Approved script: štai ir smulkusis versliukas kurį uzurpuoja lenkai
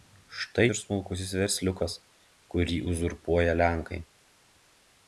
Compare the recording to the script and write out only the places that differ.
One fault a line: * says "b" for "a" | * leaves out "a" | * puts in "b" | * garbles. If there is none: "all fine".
all fine